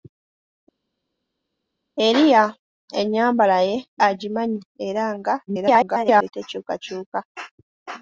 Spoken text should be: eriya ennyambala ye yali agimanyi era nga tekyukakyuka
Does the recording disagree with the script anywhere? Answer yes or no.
yes